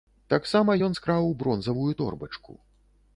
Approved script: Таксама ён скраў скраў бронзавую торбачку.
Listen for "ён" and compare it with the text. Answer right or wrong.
right